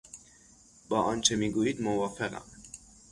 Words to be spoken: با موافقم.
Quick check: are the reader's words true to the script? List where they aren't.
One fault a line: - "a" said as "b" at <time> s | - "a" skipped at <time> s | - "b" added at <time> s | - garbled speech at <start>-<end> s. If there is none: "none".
- "آنچه میگویید" added at 1.0 s